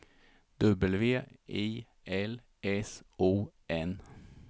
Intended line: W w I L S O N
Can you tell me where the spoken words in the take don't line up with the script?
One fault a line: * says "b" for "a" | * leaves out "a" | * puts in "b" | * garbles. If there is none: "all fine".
* leaves out "w"